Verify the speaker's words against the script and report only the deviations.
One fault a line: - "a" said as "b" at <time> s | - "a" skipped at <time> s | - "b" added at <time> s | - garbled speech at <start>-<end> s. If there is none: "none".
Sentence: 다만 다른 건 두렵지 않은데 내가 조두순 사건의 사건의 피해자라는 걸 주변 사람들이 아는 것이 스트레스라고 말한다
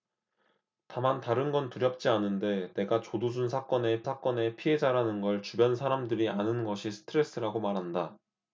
none